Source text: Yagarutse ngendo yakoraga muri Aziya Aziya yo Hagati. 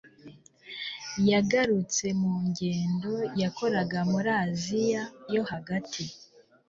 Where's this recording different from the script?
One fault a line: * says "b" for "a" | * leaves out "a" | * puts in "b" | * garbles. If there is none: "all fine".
* puts in "mu"
* leaves out "Aziya"